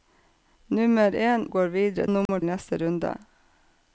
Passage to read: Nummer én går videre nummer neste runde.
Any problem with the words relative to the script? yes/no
no